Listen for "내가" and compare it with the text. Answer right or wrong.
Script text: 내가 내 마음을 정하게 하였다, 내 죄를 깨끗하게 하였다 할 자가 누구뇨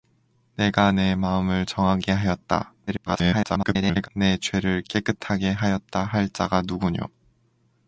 right